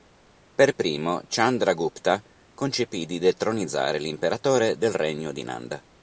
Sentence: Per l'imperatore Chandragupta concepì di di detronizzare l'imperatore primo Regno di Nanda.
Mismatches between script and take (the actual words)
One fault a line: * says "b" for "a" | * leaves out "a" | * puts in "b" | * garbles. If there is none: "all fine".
* says "primo" for "l'imperatore"
* leaves out "di"
* says "del" for "primo"